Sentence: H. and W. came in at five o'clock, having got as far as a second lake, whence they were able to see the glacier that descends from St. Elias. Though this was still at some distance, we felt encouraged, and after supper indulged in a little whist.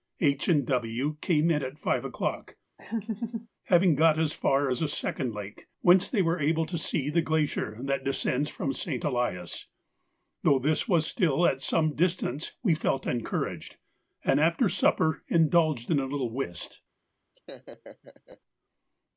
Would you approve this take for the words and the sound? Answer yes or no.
no